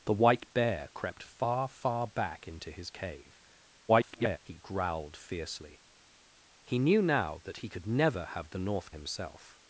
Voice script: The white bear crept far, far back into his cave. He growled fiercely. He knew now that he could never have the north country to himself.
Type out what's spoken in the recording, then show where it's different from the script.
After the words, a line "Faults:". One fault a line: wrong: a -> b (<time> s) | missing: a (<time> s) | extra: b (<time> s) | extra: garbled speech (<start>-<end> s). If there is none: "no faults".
The white bear crept far, far back into his cave. [garbled] He growled fiercely. He knew now that he could never have the north himself.
Faults:
extra: garbled speech (3.9-4.4 s)
missing: country to (8.9 s)